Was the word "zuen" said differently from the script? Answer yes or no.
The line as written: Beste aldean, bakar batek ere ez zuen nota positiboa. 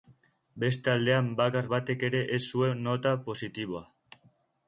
no